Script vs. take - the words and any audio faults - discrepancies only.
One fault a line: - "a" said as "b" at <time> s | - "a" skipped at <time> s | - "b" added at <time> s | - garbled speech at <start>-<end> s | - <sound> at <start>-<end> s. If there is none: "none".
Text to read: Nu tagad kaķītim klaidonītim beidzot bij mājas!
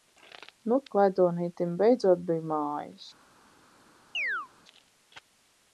- "tagad kaķītim" skipped at 0.8 s
- chirp at 4.1-4.5 s